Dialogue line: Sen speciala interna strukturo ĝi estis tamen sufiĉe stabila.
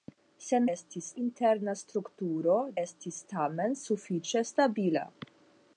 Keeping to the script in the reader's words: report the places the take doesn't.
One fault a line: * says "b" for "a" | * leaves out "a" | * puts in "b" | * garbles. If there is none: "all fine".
* says "estis" for "speciala"
* leaves out "ĝi"